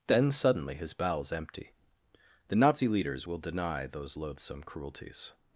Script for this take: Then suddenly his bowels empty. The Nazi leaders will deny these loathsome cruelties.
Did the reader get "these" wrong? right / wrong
wrong